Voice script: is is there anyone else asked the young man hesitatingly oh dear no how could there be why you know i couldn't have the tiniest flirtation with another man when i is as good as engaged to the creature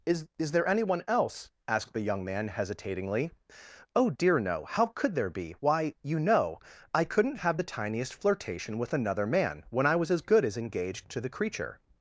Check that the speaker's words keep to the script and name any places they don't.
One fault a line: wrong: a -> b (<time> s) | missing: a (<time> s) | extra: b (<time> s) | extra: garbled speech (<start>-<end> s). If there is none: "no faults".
wrong: is -> was (9.9 s)